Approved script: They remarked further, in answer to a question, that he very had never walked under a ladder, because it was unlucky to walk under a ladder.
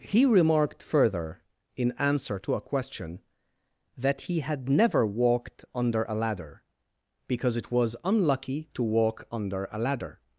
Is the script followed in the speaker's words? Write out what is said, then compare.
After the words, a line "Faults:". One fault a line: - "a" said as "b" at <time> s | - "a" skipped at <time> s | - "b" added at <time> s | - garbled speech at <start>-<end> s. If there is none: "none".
He remarked further, in answer to a question, that he had never walked under a ladder, because it was unlucky to walk under a ladder.
Faults:
- "They" said as "He" at 0.0 s
- "very" skipped at 4.4 s